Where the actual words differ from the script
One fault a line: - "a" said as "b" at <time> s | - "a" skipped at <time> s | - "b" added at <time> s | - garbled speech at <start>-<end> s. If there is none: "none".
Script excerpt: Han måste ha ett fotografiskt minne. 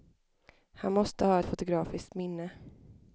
- "ett" skipped at 1.4 s